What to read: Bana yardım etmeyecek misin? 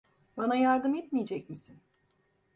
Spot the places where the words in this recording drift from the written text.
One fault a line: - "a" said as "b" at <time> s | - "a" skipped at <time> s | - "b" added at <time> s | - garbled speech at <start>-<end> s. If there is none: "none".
none